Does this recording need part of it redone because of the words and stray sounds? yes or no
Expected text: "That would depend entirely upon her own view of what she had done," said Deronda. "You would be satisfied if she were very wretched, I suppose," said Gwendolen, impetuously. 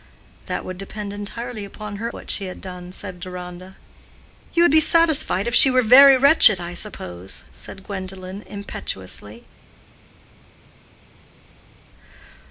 yes